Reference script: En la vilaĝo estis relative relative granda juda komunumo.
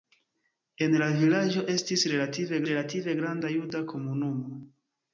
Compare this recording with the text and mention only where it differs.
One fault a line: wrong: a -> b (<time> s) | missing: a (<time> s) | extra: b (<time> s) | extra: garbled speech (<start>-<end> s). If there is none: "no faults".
no faults